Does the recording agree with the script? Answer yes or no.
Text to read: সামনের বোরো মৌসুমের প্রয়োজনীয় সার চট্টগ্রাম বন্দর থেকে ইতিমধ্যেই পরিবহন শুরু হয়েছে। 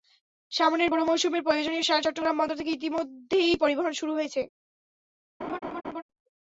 yes